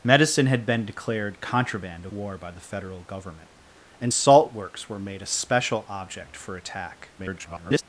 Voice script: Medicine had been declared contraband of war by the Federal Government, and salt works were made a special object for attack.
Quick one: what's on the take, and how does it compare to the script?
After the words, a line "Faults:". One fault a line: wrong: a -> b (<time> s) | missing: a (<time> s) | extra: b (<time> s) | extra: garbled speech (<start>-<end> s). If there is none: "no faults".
Medicine had been declared contraband war by the Federal Government, and salt works were made a special object for attack. [garbled]
Faults:
missing: of (2.1 s)
extra: garbled speech (7.2-7.8 s)